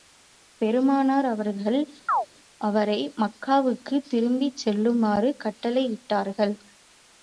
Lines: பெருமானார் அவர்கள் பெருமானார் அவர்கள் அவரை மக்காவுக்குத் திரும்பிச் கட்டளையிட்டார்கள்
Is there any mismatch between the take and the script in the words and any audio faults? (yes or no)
yes